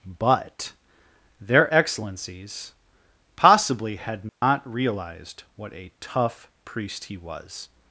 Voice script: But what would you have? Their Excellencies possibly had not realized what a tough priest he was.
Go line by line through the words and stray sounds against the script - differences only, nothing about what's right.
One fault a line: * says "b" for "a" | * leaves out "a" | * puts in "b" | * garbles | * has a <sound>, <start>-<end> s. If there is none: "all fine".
* leaves out "what would you have"
* has a dropout, 4.3-4.4 s